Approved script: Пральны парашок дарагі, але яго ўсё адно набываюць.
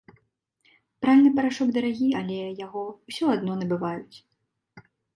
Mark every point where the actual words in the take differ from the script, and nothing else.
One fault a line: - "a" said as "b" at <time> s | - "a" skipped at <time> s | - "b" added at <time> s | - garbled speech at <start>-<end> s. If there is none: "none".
none